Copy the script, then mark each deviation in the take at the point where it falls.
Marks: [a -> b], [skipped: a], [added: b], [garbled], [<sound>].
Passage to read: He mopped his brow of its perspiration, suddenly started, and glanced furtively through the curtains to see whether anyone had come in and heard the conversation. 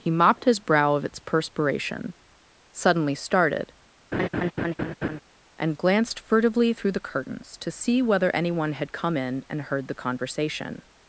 He mopped his brow of its perspiration, suddenly started, [laugh] and glanced furtively through the curtains to see whether anyone had come in and heard the conversation.